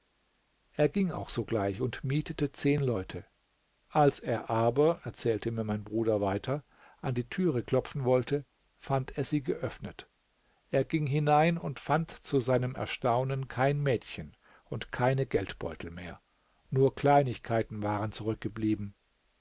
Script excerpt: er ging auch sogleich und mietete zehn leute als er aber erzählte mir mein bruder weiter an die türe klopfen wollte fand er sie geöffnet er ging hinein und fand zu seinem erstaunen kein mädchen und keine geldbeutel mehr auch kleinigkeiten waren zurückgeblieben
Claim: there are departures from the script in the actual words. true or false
true